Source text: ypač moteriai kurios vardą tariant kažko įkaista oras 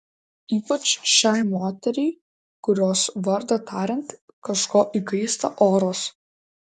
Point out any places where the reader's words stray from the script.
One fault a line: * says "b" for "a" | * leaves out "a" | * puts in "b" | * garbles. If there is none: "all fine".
* puts in "šiai"